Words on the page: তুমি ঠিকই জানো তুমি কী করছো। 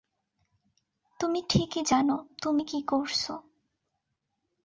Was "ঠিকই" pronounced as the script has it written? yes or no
yes